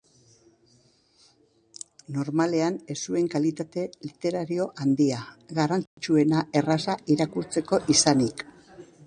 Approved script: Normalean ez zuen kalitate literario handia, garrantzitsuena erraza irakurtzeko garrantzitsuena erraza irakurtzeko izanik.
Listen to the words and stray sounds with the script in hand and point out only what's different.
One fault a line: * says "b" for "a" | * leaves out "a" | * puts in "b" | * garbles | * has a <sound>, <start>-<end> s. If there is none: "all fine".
* has a dropout, 5.9-6.0 s
* leaves out "garrantzitsuena erraza irakurtzeko"